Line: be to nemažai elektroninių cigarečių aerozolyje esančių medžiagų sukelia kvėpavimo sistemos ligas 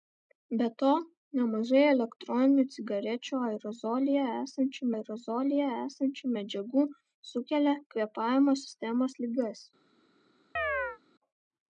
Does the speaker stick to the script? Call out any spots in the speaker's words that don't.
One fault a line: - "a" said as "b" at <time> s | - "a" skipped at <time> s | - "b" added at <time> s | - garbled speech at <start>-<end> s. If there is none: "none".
- "aerozolyje esančių" added at 4.9 s